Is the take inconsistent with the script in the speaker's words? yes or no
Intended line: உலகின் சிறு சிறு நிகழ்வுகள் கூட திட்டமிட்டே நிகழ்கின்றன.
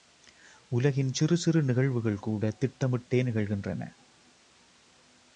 no